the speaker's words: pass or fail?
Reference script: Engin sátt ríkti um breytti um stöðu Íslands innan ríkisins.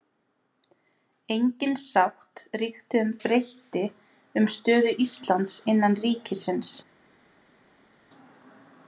pass